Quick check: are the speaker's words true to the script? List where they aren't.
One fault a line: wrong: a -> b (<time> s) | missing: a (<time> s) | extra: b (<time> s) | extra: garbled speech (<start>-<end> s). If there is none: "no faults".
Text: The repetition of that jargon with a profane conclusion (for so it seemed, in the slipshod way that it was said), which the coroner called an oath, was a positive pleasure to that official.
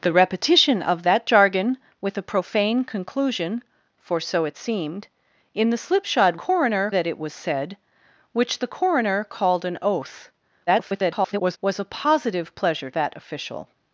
wrong: way -> coroner (6.3 s)
extra: garbled speech (10.7-11.6 s)
missing: to (12.9 s)